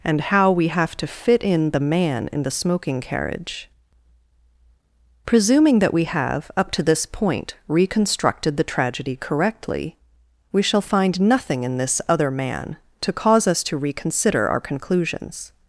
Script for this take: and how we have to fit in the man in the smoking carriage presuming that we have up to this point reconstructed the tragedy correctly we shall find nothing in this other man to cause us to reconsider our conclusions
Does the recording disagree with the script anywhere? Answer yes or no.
no